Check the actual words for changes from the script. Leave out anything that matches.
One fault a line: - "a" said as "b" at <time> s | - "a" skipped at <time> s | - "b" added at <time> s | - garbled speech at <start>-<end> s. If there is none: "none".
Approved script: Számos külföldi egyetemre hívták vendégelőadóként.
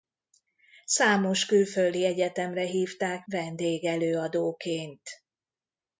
none